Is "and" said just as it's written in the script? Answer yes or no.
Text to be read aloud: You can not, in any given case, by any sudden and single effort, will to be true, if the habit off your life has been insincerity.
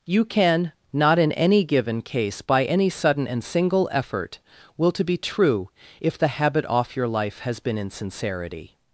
yes